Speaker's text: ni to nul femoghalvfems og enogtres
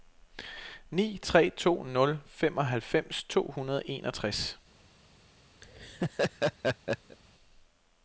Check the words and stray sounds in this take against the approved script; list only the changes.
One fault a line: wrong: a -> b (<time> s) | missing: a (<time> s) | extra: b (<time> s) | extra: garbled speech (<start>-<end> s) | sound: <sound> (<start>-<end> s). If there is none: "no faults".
extra: tre (1.2 s)
extra: to hundrede (3.2 s)
sound: laugh (5.6-7.2 s)